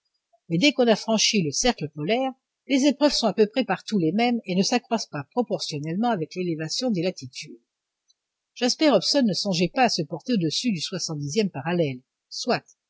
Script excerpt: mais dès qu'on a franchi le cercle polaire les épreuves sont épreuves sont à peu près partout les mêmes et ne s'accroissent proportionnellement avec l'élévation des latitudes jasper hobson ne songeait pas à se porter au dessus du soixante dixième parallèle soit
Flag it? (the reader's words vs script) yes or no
yes